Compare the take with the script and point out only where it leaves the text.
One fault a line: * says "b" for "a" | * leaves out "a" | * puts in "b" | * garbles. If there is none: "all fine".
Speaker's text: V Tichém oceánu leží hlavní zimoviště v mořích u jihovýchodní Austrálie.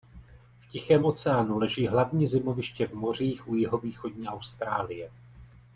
all fine